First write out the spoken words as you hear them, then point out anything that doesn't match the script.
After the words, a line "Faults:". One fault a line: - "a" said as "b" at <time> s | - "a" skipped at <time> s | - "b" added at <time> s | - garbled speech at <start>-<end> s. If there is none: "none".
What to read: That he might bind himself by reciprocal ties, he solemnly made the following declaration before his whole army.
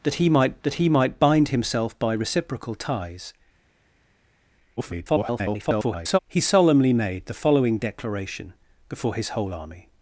That he might that he might bind himself by reciprocal ties, [garbled] he solemnly made the following declaration before his whole army.
Faults:
- "that he might" added at 0.6 s
- garbled speech at 4.8-6.2 s